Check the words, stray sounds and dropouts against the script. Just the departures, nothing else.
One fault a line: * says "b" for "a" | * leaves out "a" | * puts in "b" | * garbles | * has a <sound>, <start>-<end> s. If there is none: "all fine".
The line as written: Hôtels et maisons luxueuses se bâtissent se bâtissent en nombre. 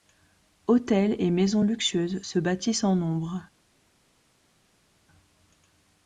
* leaves out "se bâtissent"